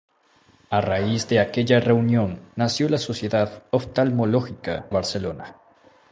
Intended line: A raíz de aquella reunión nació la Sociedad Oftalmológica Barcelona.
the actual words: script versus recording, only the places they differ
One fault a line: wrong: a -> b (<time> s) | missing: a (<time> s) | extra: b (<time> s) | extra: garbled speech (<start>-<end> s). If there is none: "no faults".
no faults